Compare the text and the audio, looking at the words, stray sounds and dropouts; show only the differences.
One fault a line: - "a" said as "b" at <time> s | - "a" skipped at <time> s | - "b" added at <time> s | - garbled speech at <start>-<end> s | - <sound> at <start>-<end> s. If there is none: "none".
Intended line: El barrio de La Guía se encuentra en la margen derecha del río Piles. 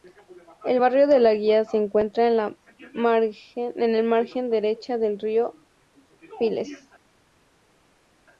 none